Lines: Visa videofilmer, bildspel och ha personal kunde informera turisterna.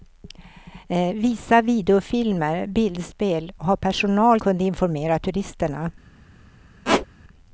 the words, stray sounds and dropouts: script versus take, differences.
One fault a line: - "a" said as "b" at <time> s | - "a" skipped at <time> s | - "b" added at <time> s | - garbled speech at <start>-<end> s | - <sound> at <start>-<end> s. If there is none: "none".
- squeak at 6.8-7.1 s